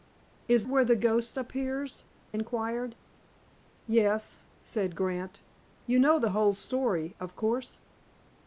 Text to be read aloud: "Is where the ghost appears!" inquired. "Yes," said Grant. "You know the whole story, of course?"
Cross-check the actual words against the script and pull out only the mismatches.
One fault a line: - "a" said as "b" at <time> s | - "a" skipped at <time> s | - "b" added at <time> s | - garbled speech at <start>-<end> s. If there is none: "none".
none